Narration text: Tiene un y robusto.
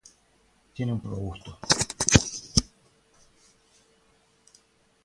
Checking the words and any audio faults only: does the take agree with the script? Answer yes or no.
yes